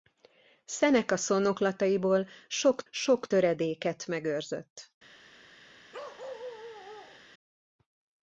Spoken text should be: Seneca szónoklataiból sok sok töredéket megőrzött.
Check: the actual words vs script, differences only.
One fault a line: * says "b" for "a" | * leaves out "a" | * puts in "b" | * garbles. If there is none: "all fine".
all fine